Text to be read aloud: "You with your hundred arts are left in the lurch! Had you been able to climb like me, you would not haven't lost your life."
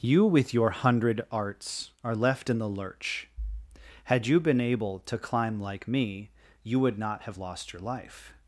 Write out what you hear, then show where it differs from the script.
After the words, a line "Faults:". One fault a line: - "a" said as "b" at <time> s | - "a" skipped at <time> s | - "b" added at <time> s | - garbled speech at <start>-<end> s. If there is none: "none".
"You with your hundred arts are left in the lurch! Had you been able to climb like me, you would not have lost your life."
Faults:
- "haven't" said as "have" at 7.2 s